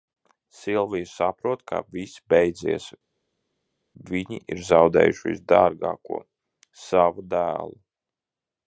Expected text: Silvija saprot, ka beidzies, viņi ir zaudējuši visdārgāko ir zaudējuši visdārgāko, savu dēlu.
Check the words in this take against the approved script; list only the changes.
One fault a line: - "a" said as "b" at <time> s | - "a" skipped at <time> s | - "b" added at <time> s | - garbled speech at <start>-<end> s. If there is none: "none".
- "viss" added at 2.0 s
- "ir zaudējuši visdārgāko" skipped at 6.2 s